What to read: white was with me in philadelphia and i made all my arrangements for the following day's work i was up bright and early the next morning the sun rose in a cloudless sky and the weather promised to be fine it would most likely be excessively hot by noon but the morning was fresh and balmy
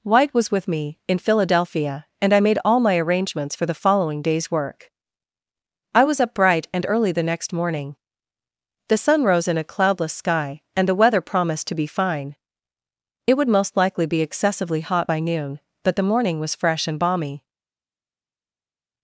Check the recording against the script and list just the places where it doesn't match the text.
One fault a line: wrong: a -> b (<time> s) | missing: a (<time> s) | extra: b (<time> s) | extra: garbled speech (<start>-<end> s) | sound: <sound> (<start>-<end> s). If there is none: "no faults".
no faults